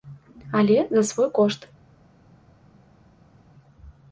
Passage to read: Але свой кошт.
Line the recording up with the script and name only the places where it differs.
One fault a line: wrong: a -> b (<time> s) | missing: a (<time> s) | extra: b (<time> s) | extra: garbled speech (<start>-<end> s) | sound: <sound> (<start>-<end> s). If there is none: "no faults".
extra: за (0.9 s)